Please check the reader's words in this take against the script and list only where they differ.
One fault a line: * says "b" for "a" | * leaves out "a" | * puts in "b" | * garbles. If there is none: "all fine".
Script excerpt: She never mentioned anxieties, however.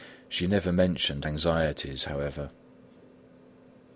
all fine